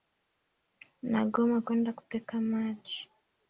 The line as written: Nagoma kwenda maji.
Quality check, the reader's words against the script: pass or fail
fail